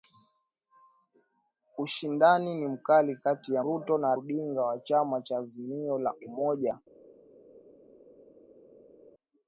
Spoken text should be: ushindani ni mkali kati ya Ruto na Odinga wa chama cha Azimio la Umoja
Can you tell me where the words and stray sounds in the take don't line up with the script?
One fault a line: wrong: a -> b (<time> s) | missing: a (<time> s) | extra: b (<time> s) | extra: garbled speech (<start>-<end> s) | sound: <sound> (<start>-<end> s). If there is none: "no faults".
no faults